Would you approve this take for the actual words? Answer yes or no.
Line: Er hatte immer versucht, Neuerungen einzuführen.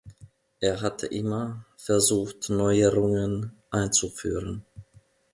yes